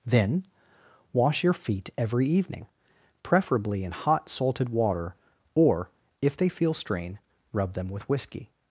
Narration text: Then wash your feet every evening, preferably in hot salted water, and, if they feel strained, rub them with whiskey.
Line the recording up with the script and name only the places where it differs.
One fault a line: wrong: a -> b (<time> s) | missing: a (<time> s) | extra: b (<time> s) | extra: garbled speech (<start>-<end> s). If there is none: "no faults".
wrong: and -> or (5.5 s)
wrong: strained -> strain (6.7 s)